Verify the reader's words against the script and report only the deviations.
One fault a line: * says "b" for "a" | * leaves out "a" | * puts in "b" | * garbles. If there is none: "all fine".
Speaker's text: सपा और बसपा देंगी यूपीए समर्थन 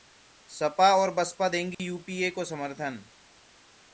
* puts in "को"